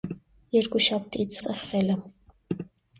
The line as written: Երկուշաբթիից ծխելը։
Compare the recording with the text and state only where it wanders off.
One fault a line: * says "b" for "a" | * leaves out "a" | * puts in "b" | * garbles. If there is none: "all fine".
all fine